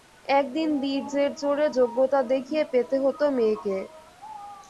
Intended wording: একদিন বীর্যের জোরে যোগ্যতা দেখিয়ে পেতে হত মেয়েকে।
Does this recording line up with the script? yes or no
yes